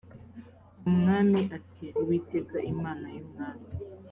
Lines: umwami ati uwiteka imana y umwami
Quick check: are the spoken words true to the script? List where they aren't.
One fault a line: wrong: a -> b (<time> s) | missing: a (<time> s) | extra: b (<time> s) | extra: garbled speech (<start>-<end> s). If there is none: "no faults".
no faults